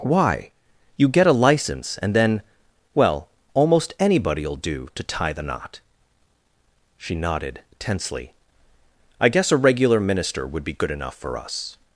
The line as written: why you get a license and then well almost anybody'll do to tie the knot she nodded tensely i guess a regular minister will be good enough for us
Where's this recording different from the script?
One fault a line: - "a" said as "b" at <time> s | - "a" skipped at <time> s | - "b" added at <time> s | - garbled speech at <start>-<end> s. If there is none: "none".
- "will" said as "would" at 10.5 s